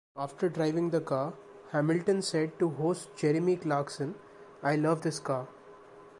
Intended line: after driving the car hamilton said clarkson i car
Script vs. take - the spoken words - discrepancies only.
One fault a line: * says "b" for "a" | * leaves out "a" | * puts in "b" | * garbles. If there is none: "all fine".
* puts in "to host jeremy"
* puts in "love this"